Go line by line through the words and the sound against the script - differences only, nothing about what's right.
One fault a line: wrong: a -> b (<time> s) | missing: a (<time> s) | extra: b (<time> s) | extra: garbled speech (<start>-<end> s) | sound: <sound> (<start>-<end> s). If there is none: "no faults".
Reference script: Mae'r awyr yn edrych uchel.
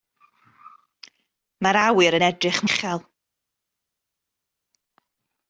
no faults